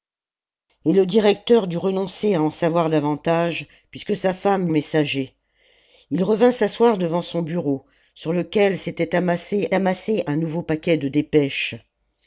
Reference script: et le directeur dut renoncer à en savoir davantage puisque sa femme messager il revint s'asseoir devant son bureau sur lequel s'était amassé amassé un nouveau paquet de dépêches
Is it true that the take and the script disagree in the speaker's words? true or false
false